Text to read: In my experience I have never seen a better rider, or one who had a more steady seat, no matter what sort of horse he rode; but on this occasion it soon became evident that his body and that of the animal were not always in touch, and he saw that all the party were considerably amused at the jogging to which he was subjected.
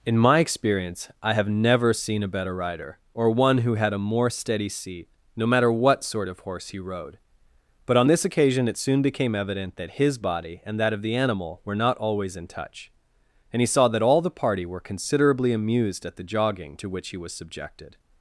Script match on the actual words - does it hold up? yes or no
yes